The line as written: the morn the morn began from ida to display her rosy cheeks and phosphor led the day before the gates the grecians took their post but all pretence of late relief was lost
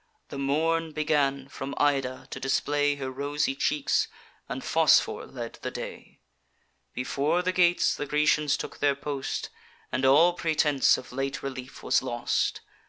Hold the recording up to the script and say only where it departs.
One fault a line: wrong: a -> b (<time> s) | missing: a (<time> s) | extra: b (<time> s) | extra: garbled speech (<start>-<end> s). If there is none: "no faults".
missing: the morn (0.9 s)
wrong: but -> and (9.9 s)